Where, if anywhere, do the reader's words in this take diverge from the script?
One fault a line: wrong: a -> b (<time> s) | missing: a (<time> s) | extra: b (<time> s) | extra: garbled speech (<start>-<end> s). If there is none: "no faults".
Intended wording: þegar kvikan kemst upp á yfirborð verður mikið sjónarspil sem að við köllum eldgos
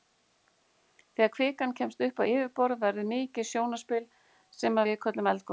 missing: að (4.8 s)